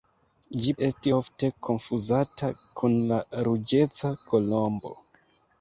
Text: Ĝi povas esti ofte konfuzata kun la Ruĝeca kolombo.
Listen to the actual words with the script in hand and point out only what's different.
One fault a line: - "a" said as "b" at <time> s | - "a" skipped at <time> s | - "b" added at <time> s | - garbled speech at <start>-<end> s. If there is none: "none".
- "povas" skipped at 0.7 s